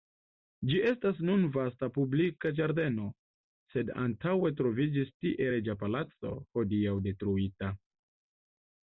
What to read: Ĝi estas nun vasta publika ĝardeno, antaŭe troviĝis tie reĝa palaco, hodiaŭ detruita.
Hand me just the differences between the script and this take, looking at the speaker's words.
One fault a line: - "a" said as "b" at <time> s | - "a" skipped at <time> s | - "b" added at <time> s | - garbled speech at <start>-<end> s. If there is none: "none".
- "sed" added at 3.7 s